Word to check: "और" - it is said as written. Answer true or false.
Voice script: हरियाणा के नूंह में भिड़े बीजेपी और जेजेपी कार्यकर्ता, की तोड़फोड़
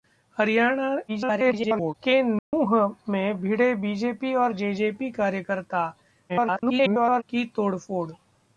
true